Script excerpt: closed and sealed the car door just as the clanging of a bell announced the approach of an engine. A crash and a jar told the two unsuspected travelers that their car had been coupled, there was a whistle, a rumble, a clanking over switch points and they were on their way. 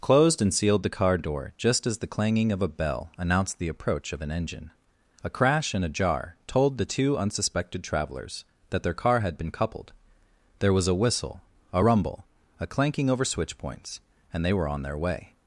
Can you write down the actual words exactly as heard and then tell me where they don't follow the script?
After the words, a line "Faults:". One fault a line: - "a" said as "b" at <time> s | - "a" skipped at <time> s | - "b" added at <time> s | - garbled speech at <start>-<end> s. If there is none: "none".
closed and sealed the car door just as the clanging of a bell announced the approach of an engine. A crash and a jar told the two unsuspected travelers that their car had been coupled, there was a whistle, a rumble, a clanking over switch points and they were on their way.
Faults:
none